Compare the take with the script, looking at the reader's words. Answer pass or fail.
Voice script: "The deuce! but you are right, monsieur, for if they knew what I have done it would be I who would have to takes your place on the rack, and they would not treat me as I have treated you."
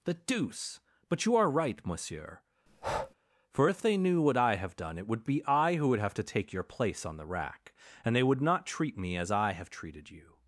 fail